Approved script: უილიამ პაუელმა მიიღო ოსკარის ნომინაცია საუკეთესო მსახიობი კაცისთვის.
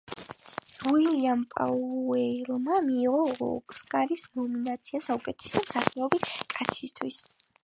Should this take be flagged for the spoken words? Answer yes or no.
no